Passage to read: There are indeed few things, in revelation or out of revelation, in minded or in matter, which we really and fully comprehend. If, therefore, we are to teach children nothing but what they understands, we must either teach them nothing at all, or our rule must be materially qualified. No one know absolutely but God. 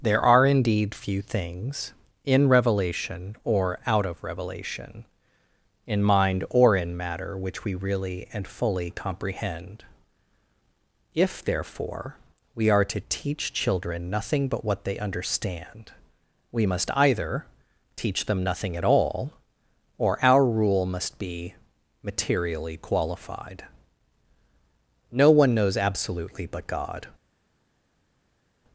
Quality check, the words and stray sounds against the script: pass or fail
fail